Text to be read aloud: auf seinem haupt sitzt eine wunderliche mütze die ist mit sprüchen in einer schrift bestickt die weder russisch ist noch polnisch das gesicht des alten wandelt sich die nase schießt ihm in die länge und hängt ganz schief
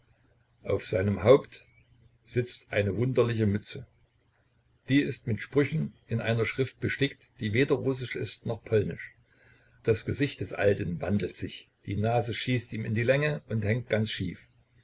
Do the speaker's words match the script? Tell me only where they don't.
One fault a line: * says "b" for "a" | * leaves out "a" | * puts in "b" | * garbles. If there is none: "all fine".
all fine